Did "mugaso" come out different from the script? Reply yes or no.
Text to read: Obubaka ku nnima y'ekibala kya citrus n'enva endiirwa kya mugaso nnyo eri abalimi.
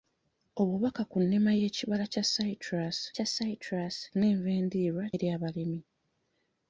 yes